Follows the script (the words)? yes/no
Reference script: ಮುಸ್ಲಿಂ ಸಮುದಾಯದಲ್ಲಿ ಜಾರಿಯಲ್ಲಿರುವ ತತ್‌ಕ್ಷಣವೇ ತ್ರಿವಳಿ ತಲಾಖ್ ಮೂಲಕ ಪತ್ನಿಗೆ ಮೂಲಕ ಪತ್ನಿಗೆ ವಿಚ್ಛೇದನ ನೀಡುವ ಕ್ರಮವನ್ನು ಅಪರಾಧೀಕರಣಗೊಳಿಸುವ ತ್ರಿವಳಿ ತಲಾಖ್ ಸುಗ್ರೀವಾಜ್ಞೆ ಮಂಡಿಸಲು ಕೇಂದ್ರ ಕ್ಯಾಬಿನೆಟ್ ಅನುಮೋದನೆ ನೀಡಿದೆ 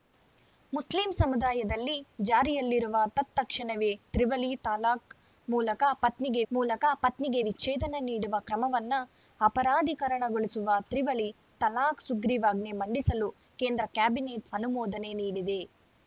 yes